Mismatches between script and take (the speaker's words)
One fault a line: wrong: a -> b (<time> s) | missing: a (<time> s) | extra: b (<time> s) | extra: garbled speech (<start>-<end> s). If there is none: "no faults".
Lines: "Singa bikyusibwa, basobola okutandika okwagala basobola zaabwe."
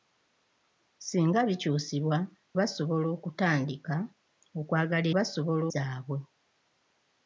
no faults